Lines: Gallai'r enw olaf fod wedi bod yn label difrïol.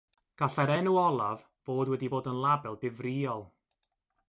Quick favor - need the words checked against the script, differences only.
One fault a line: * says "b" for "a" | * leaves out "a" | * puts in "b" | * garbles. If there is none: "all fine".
all fine